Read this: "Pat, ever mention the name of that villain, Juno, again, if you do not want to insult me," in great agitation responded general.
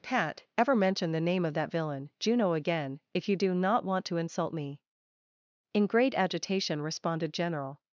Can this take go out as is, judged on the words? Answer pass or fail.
pass